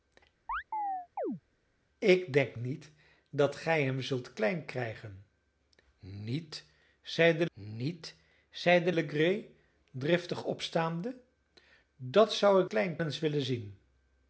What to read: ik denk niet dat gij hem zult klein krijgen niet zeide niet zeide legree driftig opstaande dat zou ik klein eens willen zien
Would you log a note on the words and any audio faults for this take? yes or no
yes